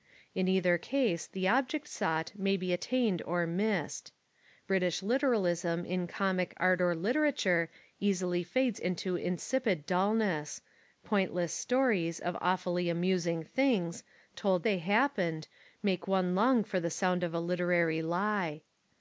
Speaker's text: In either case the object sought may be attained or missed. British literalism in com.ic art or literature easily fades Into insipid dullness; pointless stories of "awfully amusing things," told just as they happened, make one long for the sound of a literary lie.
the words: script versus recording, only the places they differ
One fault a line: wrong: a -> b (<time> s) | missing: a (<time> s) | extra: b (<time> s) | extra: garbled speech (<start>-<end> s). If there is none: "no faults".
missing: just as (14.7 s)